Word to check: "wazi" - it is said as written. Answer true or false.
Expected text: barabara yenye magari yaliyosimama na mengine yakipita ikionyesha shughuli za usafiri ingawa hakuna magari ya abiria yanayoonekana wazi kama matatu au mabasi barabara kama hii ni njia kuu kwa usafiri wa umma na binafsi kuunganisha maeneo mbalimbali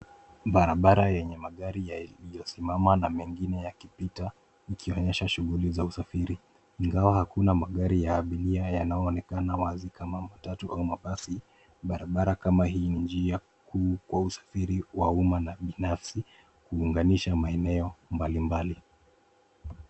true